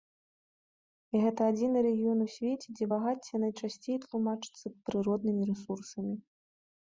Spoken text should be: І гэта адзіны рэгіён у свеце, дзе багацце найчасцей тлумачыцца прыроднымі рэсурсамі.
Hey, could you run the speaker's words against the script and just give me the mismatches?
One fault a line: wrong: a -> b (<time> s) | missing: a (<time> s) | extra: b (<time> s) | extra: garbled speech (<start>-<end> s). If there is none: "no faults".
no faults